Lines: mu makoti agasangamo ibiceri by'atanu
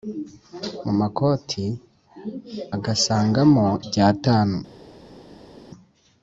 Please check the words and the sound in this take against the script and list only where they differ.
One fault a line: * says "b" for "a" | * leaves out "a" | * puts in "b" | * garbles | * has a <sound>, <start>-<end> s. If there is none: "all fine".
* leaves out "ibiceri"